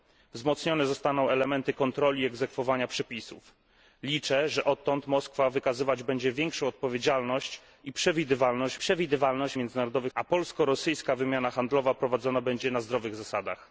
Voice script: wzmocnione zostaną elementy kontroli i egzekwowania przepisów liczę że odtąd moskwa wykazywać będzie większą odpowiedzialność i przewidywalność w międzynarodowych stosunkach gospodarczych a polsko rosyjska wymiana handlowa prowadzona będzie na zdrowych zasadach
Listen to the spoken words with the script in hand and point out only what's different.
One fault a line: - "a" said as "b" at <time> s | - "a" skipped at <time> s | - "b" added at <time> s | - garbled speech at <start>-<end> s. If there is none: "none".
- "przewidywalność" added at 8.8 s
- "stosunkach gospodarczych" skipped at 10.1 s